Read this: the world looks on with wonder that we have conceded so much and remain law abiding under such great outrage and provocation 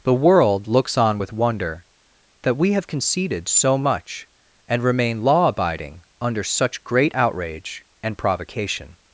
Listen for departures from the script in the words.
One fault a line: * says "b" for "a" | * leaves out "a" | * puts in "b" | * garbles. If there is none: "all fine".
all fine